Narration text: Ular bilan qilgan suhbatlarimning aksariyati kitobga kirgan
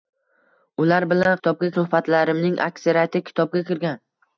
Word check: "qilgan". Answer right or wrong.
wrong